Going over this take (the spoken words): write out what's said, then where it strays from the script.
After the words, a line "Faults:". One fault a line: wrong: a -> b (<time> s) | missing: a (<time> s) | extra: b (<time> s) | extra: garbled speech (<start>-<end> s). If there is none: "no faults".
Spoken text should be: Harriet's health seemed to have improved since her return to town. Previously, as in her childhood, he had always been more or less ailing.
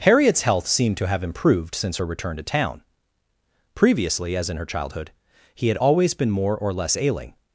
Harriet's health seemed to have improved since her return to town. Previously, as in her childhood, he had always been more or less ailing.
Faults:
no faults